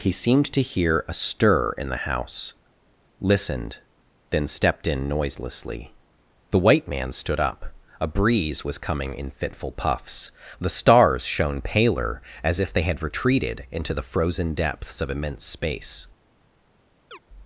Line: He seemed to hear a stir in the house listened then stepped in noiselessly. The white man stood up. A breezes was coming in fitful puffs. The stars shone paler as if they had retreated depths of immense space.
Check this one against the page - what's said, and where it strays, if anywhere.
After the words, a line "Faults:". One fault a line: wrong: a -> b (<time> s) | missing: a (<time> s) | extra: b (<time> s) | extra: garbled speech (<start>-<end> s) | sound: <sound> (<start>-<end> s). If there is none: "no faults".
He seemed to hear a stir in the house listened then stepped in noiselessly. The white man stood up. A breeze was coming in fitful puffs. The stars shone paler as if they had retreated into the frozen depths of immense space.
Faults:
wrong: breezes -> breeze (8.1 s)
extra: into the frozen (13.7 s)
sound: chirp (17.1-17.2 s)